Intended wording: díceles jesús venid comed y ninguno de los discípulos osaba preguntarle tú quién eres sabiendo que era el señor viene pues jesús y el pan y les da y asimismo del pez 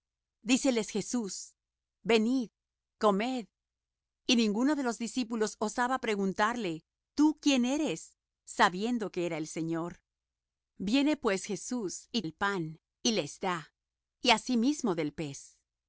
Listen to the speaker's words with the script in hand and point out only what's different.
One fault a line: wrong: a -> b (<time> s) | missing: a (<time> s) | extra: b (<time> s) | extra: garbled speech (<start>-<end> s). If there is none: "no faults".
no faults